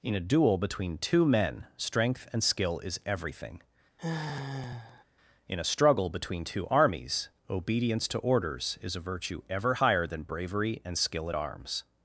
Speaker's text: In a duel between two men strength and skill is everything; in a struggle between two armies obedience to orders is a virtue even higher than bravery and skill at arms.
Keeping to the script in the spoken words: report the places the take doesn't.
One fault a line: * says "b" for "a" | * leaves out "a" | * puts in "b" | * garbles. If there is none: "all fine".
* says "ever" for "even"